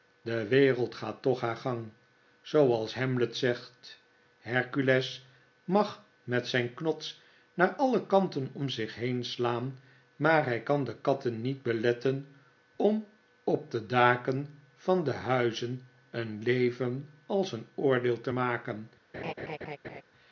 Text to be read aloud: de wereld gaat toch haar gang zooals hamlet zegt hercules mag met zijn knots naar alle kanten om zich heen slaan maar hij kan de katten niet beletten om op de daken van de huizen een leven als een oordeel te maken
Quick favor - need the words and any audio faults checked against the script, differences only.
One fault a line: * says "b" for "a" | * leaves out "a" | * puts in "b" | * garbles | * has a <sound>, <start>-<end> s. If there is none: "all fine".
* has a laugh, 19.1-20.0 s